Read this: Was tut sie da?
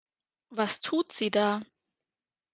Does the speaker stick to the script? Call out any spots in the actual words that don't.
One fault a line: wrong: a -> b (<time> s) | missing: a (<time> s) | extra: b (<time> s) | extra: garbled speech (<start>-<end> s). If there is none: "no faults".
no faults